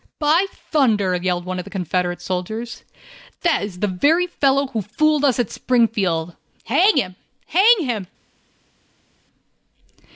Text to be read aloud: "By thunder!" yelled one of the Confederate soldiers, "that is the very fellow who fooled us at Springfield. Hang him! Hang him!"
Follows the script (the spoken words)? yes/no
yes